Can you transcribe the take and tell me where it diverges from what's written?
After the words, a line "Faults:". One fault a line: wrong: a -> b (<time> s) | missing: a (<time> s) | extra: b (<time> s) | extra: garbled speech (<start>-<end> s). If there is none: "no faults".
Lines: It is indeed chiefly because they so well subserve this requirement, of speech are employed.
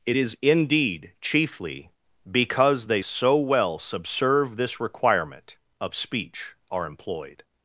It is indeed chiefly because they so well subserve this requirement, of speech are employed.
Faults:
no faults